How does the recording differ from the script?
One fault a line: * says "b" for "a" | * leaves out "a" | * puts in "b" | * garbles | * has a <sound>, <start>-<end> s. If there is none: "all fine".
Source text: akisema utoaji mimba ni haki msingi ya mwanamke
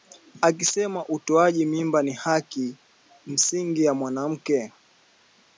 all fine